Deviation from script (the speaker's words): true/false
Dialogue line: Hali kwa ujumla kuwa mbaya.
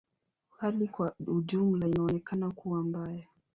true